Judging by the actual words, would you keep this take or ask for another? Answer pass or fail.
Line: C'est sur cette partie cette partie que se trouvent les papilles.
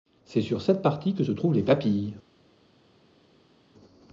fail